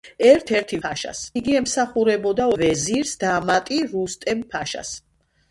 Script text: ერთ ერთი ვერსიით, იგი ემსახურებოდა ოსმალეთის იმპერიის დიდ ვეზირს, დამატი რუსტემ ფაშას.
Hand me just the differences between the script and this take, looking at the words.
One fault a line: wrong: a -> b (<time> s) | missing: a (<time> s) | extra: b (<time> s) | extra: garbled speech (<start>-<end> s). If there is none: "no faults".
wrong: ვერსიით -> ფაშას (0.9 s)
missing: ოსმალეთის იმპერიის დიდ (2.5 s)